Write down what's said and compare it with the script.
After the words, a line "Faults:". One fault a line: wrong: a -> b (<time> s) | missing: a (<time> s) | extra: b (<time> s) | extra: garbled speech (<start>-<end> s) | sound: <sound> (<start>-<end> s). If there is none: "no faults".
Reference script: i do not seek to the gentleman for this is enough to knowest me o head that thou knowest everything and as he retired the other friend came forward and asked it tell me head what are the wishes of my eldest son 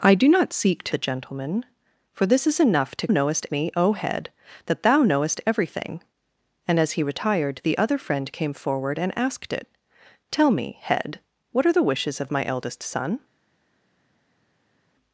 i do not seek to the gentleman for this is enough to knowest me o head that thou knowest everything and as he retired the other friend came forward and asked it tell me head what are the wishes of my eldest son
Faults:
no faults